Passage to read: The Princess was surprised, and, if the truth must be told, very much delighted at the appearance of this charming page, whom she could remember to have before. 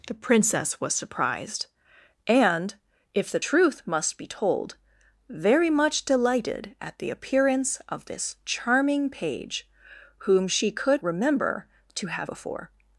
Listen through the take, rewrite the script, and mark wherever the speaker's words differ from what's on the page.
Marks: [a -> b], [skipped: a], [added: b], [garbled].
The Princess was surprised, and, if the truth must be told, very much delighted at the appearance of this charming page, whom she could remember to have before.